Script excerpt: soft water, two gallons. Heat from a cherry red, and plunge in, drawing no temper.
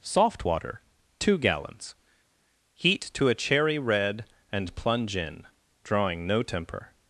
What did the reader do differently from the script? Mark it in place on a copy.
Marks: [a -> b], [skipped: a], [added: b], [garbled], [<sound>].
soft water, two gallons. Heat [from -> to] a cherry red, and plunge in, drawing no temper.